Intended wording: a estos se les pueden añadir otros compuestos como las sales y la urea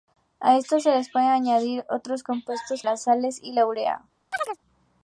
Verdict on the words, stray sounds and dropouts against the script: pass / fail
fail